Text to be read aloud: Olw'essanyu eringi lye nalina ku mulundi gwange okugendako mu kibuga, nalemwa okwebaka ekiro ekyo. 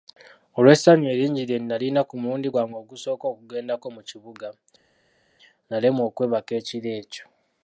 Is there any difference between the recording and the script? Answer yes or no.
yes